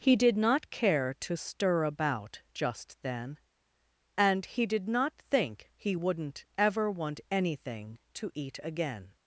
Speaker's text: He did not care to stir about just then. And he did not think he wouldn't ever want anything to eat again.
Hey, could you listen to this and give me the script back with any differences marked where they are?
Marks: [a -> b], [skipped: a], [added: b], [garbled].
He did not care to stir about just then. And he did not think he wouldn't ever want anything to eat again.